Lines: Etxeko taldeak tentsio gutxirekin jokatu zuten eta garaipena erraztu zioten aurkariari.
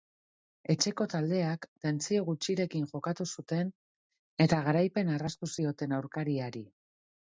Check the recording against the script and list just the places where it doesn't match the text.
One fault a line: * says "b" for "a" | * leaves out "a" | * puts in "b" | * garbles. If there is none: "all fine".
all fine